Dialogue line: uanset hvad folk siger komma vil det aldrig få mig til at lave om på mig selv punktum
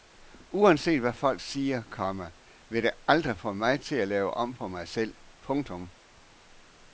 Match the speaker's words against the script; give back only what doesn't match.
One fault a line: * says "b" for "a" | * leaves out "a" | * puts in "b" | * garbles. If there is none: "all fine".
all fine